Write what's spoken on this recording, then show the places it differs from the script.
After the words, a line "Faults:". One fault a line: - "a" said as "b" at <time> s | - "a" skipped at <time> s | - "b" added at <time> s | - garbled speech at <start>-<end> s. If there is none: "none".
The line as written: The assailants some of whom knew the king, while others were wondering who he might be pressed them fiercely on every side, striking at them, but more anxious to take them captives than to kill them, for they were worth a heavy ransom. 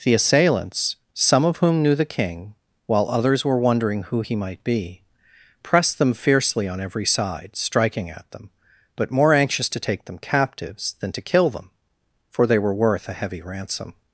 The assailants some of whom knew the king, while others were wondering who he might be pressed them fiercely on every side, striking at them, but more anxious to take them captives than to kill them, for they were worth a heavy ransom.
Faults:
none